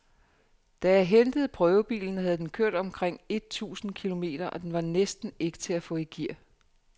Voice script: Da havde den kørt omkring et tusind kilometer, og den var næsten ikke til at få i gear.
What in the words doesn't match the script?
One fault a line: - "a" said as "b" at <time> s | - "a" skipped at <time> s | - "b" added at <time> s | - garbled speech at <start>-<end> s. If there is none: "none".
- "jeg hentede prøvebilen" added at 0.9 s